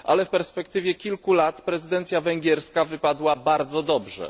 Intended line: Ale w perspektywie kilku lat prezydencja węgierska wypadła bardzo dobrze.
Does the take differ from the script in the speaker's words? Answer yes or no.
no